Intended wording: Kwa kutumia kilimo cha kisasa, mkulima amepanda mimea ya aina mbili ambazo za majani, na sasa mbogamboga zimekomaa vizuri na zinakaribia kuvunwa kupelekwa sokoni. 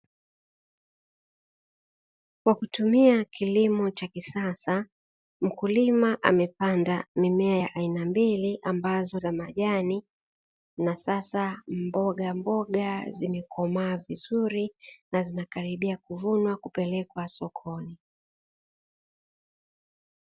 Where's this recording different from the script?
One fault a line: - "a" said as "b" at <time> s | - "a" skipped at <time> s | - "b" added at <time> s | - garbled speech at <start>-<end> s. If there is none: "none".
none